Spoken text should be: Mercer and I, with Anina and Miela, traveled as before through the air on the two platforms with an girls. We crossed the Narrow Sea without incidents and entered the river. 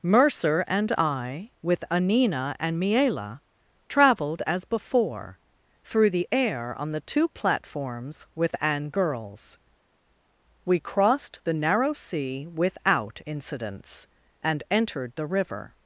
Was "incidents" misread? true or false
false